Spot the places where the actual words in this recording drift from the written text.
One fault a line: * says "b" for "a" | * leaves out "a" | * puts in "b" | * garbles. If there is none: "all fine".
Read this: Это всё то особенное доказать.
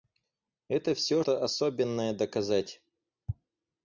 all fine